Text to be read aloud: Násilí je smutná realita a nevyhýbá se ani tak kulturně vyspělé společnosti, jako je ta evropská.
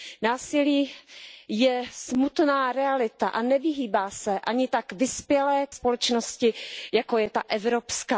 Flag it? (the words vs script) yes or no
yes